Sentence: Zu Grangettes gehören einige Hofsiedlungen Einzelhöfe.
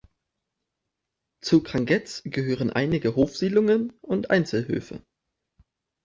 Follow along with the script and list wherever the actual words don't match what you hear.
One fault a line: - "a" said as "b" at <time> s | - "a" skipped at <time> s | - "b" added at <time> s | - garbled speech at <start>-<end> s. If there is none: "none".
- "und" added at 4.0 s